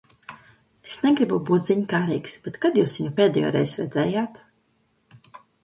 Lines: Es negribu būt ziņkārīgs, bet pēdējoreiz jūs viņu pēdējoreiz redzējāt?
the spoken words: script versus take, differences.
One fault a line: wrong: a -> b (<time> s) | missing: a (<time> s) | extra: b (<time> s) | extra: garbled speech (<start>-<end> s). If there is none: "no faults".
wrong: pēdējoreiz -> kad (2.6 s)